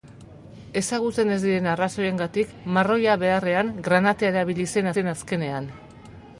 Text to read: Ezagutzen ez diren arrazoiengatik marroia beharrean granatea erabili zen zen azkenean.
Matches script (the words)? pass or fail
pass